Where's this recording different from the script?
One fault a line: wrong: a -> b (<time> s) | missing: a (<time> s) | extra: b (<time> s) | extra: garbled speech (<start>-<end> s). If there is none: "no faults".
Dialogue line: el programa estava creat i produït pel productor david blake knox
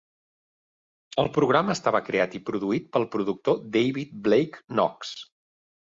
no faults